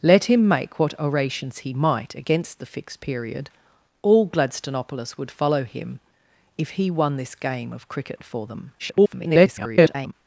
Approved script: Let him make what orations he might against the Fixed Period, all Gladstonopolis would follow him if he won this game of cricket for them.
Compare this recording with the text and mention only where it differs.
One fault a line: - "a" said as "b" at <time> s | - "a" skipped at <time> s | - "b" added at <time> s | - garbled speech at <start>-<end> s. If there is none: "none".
- garbled speech at 8.8-10.1 s